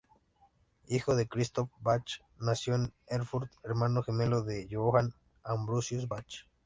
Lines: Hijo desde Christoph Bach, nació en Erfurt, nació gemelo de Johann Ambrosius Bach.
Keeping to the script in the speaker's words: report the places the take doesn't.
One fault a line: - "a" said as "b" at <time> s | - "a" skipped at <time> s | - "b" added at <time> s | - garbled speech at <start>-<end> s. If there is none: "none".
- "desde" said as "de" at 1.1 s
- "nació" said as "hermano" at 3.6 s